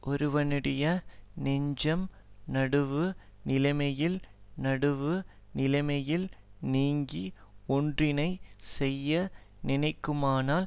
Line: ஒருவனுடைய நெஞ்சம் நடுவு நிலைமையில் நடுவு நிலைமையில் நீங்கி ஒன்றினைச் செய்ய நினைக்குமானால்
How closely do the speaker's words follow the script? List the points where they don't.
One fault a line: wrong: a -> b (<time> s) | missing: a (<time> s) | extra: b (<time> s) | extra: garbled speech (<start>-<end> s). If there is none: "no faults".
no faults